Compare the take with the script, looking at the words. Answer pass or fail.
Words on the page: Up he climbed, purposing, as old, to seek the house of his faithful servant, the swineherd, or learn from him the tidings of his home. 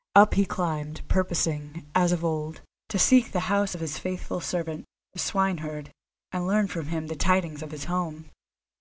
fail